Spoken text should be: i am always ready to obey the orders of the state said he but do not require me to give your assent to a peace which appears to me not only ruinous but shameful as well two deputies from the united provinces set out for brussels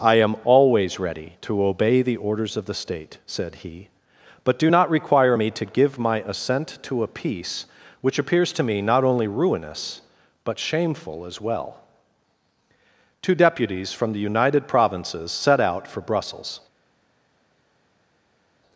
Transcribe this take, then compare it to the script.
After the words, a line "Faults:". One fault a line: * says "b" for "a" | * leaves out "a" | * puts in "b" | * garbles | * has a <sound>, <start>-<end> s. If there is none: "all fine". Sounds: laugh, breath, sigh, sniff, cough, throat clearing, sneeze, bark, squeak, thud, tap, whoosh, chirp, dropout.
i am always ready to obey the orders of the state said he but do not require me to give my assent to a peace which appears to me not only ruinous but shameful as well two deputies from the united provinces set out for brussels
Faults:
* says "my" for "your"